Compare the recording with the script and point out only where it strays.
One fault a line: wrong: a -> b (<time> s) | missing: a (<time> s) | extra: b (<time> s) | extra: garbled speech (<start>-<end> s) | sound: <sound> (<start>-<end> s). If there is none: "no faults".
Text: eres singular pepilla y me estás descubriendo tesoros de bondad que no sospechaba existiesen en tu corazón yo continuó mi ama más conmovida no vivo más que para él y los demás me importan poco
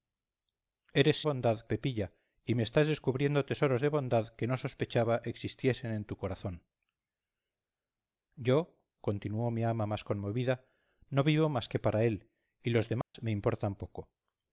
wrong: singular -> bondad (1.2 s)
sound: dropout (13.0-13.1 s)